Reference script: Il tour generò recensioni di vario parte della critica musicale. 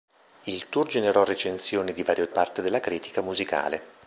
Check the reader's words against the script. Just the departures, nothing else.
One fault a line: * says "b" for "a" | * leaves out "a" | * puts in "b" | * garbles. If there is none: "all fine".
all fine